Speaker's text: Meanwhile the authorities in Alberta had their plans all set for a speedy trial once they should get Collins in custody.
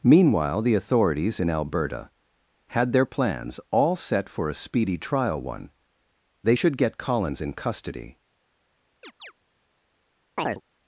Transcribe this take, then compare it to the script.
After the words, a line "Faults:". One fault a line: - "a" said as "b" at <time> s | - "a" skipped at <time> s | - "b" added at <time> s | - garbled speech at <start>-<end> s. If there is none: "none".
Meanwhile the authorities in Alberta had their plans all set for a speedy trial one they should get Collins in custody.
Faults:
- "once" said as "one" at 5.4 s